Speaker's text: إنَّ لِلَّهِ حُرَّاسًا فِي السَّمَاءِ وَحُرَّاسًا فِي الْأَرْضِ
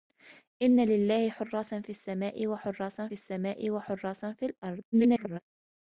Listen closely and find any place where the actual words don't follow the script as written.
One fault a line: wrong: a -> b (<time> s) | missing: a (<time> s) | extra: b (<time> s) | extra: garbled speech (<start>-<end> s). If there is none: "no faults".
extra: السَّمَاءِ وَحُرَّاسًا (3.1 s)
extra: garbled speech (4.9-5.4 s)